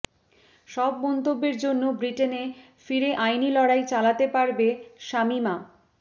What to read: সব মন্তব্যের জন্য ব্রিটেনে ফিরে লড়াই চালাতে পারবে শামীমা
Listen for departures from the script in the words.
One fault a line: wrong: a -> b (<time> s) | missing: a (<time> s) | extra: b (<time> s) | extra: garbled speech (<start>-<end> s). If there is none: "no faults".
extra: আইনি (3.2 s)